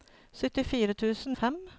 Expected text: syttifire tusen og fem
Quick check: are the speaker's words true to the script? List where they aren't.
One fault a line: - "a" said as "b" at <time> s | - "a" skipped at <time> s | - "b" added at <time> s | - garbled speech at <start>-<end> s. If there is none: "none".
none